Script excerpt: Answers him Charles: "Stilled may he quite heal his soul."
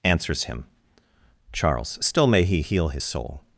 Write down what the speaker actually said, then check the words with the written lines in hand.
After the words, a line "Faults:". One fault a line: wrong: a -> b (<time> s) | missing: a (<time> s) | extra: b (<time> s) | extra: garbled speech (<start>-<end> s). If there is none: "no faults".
Answers him Charles: "Still may he heal his soul."
Faults:
wrong: Stilled -> Still (2.0 s)
missing: quite (2.6 s)